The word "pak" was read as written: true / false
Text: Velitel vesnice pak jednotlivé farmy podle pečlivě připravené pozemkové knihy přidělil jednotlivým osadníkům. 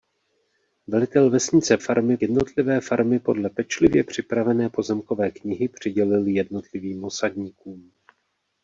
false